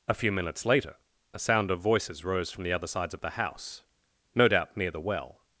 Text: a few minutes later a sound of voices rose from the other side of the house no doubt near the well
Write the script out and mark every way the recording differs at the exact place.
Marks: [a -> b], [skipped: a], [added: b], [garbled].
a few minutes later a sound of voices rose from the other [side -> sides] of the house no doubt near the well